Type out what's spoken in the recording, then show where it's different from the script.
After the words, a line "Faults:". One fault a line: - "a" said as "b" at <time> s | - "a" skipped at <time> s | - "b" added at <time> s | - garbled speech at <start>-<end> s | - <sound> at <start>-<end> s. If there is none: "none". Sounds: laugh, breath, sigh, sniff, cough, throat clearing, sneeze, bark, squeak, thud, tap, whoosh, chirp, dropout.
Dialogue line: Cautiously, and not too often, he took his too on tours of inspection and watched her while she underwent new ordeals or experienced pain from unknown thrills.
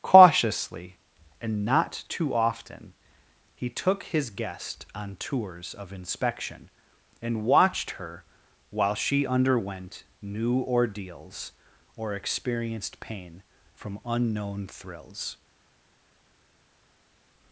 Cautiously, and not too often, he took his guest on tours of inspection and watched her while she underwent new ordeals or experienced pain from unknown thrills.
Faults:
- "too" said as "guest" at 4.3 s